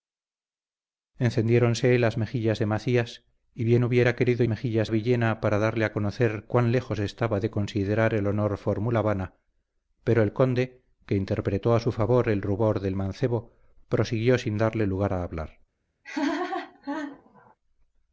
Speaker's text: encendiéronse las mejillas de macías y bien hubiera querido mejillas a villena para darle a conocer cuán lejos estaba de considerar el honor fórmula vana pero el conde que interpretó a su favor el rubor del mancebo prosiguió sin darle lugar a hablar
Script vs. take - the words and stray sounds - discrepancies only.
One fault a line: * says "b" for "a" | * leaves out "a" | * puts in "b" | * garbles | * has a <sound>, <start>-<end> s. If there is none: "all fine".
* has a laugh, 16.0-17.5 s